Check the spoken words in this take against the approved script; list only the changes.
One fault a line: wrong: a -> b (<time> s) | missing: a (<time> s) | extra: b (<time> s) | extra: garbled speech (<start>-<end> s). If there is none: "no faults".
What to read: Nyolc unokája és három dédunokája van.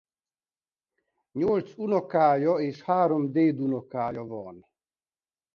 no faults